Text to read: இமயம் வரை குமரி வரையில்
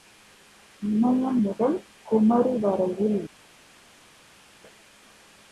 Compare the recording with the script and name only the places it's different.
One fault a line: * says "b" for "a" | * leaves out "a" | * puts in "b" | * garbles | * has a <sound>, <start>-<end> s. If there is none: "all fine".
* says "முதல்" for "வரை"